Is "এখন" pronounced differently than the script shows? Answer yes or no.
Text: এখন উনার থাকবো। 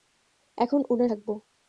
no